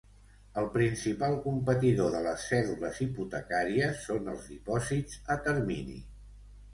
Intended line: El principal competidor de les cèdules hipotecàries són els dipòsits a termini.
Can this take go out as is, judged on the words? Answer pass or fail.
pass